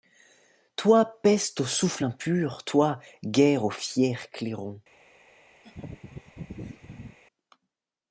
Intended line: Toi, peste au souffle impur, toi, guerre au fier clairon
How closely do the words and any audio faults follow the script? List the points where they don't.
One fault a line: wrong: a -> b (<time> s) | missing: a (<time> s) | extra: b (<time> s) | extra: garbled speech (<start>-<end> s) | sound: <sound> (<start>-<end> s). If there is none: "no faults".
sound: laugh (5.6-7.2 s)